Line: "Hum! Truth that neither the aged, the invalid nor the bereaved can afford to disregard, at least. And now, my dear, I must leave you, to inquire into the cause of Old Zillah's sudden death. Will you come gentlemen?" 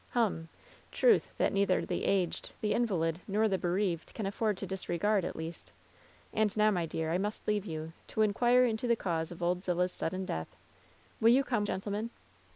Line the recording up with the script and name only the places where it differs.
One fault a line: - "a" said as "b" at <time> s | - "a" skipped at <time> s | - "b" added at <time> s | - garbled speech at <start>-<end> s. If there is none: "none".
none